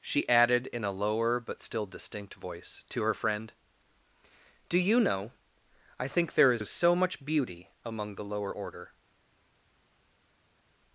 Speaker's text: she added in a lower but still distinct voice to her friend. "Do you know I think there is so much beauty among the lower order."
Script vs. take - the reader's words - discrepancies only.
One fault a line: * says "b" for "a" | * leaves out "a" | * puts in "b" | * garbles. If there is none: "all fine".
* puts in "is"